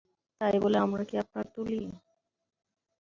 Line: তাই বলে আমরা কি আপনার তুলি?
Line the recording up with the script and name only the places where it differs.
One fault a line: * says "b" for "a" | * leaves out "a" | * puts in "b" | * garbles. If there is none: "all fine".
all fine